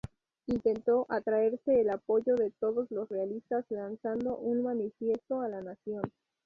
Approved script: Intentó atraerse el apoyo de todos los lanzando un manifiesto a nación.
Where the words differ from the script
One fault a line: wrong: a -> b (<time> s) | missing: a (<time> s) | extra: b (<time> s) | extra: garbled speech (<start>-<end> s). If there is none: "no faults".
extra: realistas (3.1 s)
extra: la (5.5 s)